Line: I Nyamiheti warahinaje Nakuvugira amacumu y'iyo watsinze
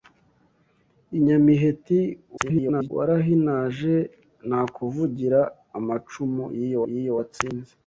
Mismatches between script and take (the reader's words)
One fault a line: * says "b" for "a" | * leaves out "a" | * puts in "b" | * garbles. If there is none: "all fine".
* garbles
* puts in "y'iyo"